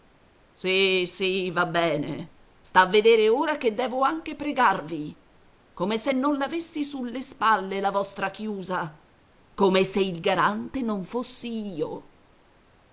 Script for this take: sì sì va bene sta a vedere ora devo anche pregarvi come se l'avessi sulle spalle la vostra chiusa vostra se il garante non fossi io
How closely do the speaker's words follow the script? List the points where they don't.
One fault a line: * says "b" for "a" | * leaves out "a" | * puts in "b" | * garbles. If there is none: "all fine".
* puts in "che"
* puts in "non"
* says "come" for "vostra"